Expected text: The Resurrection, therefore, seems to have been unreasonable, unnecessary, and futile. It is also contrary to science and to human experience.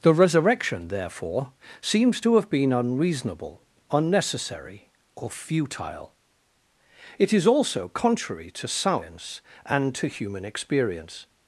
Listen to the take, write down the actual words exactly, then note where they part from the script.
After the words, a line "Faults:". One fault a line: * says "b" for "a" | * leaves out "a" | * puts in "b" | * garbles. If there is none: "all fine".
The Resurrection, therefore, seems to have been unreasonable, unnecessary, or futile. It is also contrary to science and to human experience.
Faults:
* says "or" for "and"